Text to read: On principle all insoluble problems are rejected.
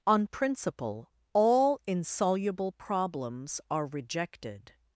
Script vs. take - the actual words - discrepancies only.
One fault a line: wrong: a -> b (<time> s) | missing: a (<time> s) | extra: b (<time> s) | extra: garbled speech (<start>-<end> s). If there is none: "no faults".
no faults